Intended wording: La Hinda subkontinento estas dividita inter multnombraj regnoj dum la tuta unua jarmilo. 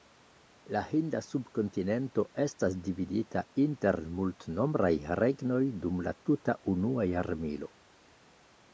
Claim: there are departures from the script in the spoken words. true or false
false